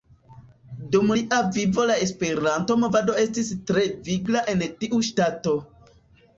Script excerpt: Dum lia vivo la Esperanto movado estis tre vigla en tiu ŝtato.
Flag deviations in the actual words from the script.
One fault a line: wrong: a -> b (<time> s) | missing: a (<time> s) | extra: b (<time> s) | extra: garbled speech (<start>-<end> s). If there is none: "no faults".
no faults